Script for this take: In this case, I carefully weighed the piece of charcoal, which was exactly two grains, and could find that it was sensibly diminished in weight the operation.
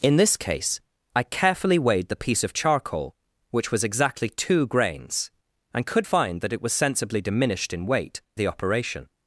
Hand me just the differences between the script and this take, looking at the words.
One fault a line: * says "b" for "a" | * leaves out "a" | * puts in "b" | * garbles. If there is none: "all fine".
all fine